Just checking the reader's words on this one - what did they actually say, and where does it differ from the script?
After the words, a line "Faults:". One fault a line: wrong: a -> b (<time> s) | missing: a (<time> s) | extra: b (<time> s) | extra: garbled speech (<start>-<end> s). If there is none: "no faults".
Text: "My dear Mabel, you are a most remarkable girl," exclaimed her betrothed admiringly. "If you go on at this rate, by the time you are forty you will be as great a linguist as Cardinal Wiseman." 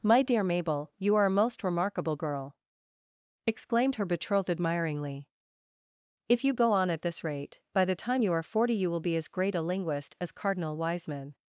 "My dear Mabel, you are a most remarkable girl," exclaimed her betrothed admiringly. "If you go on at this rate, by the time you are forty you will be as great a linguist as Cardinal Wiseman."
Faults:
no faults